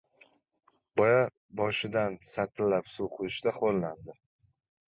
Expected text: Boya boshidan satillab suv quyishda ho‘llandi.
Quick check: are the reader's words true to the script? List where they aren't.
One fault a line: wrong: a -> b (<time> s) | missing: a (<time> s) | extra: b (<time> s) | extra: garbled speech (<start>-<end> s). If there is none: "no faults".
no faults